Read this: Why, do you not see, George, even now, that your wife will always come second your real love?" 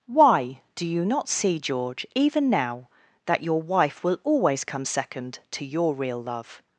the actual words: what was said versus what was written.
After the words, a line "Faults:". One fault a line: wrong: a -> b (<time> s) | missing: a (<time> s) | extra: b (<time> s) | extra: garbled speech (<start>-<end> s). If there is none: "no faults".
Why, do you not see, George, even now, that your wife will always come second to your real love?"
Faults:
extra: to (5.5 s)